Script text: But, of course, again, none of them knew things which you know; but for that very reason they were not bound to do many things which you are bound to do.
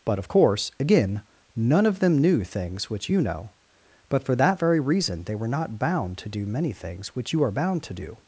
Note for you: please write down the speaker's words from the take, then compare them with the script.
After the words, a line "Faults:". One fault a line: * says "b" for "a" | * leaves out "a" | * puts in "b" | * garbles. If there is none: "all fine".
But, of course, again, none of them knew things which you know; but for that very reason they were not bound to do many things which you are bound to do.
Faults:
all fine